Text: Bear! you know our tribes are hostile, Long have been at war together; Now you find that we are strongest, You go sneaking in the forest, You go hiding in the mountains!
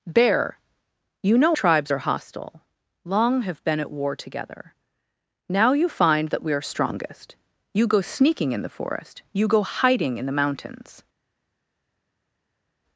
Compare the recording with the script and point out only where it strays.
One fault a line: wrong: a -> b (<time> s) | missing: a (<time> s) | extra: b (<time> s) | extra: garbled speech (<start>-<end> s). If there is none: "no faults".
missing: our (1.6 s)